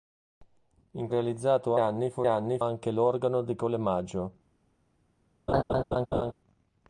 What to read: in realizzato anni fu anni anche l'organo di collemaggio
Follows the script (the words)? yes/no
yes